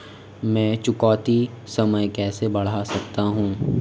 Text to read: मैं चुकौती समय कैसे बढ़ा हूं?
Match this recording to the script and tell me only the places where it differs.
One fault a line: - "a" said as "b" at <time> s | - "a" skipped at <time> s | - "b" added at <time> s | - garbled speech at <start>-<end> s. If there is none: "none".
- "सकता" added at 2.8 s